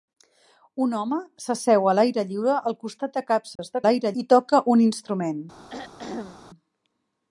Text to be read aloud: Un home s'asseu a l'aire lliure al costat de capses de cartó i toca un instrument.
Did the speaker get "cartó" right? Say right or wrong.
wrong